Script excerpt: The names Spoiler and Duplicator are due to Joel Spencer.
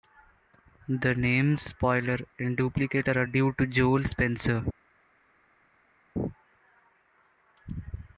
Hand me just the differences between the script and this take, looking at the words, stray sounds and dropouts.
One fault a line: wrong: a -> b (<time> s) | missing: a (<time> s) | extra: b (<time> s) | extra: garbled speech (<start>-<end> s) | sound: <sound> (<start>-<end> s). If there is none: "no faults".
no faults